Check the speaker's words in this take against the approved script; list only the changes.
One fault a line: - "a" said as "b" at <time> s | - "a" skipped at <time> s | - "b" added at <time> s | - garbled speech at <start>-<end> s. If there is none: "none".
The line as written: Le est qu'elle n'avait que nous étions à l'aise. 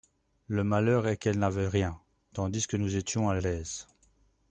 - "malheur" added at 0.6 s
- "rien tandis" added at 1.7 s